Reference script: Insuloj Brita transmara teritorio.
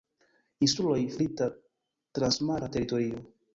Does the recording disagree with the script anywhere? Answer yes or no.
no